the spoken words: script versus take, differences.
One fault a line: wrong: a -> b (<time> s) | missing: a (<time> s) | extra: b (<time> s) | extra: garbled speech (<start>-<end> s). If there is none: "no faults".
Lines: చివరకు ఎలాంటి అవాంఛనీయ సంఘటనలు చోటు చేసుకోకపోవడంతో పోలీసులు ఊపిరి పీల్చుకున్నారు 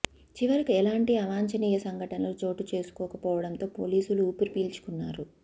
no faults